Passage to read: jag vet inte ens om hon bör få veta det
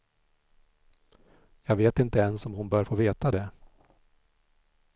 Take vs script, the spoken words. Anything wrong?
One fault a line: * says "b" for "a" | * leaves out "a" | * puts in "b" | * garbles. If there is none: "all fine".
all fine